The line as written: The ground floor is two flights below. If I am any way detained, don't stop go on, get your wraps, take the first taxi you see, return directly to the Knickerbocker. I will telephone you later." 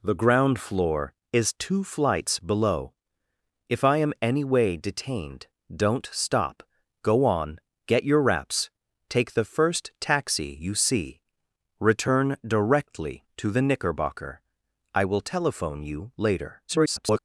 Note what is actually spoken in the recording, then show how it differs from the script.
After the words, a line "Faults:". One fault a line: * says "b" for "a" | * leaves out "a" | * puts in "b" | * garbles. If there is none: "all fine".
The ground floor is two flights below. If I am any way detained, don't stop go on, get your wraps, take the first taxi you see, return directly to the Knickerbocker. I will telephone you later." [garbled]
Faults:
* garbles